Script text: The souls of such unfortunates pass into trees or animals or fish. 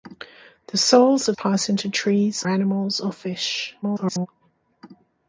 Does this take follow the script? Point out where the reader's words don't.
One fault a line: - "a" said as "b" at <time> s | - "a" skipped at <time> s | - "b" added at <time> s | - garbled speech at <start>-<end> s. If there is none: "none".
- "such unfortunates" skipped at 1.4 s
- "or" skipped at 2.4 s
- garbled speech at 3.8-4.3 s